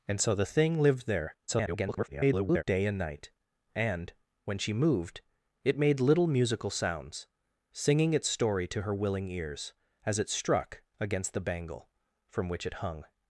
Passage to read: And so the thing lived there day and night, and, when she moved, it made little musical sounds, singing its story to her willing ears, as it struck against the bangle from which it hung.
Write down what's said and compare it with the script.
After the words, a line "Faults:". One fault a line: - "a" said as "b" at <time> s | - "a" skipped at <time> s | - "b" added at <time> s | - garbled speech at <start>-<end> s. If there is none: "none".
And so the thing lived there [garbled] day and night, and, when she moved, it made little musical sounds, singing its story to her willing ears, as it struck against the bangle from which it hung.
Faults:
- garbled speech at 1.5-2.6 s